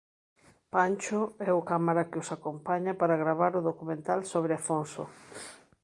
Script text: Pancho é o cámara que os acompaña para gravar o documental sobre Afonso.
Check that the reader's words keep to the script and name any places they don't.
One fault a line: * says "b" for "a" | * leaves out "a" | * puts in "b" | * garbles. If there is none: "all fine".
all fine